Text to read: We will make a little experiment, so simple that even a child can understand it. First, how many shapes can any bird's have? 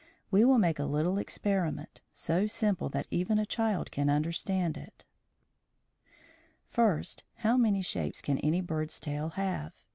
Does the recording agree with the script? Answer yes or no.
no